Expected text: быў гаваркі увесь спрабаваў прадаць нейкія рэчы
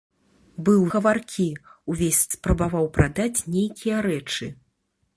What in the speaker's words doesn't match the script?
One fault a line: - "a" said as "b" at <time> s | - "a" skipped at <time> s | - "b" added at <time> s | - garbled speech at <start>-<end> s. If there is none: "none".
none